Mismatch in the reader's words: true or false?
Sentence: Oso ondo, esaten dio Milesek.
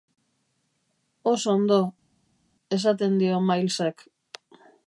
false